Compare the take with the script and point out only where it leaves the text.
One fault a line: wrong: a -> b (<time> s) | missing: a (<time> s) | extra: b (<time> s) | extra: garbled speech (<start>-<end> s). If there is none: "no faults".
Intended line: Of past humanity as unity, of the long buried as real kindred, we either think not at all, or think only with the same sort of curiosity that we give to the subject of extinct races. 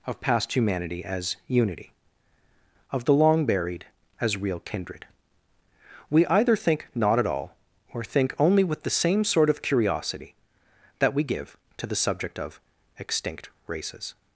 no faults